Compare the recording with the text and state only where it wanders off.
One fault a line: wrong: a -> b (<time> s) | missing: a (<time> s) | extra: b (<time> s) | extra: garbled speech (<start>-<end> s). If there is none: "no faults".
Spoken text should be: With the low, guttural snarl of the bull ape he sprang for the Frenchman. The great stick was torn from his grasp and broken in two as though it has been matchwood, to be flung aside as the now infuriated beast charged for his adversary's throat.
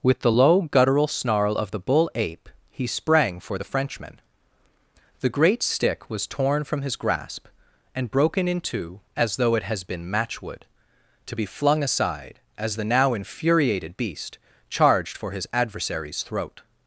no faults